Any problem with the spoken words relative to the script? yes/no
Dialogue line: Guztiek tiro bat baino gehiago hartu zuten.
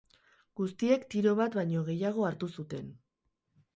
no